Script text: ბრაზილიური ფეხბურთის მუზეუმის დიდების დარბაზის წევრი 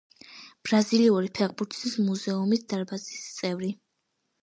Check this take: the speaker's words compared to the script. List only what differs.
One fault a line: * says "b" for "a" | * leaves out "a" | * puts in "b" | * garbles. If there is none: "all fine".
* leaves out "დიდების"